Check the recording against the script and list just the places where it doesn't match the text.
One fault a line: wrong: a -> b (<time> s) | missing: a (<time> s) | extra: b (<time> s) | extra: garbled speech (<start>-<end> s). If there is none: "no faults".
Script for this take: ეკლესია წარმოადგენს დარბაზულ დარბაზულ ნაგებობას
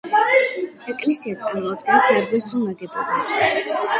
missing: დარბაზულ (2.6 s)